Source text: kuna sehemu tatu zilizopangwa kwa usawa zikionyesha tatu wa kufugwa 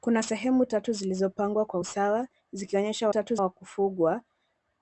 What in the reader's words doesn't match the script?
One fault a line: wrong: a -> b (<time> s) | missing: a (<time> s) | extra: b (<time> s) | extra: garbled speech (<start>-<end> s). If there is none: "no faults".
no faults